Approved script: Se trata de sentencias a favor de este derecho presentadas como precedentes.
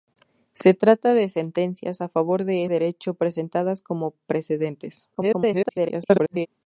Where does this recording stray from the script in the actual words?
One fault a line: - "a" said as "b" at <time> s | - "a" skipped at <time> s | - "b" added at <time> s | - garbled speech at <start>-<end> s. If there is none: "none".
- "este" skipped at 2.6 s
- garbled speech at 5.1-6.5 s